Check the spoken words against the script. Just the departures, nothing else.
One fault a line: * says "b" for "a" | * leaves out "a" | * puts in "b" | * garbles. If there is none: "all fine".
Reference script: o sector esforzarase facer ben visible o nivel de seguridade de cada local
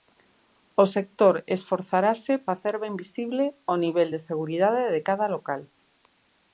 all fine